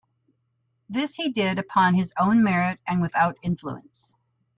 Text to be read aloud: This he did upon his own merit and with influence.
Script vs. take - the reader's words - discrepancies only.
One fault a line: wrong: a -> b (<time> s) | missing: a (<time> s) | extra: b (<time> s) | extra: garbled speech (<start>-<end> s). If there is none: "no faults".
wrong: with -> without (3.0 s)